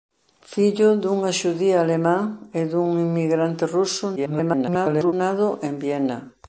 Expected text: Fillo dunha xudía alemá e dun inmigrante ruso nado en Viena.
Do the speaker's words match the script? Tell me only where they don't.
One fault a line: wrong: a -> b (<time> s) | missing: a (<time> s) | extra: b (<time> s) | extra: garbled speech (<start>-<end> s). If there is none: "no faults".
extra: garbled speech (4.2-5.1 s)